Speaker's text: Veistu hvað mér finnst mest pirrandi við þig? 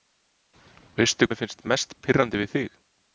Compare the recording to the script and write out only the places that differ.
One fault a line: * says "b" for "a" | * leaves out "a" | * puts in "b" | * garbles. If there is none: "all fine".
* leaves out "hvað"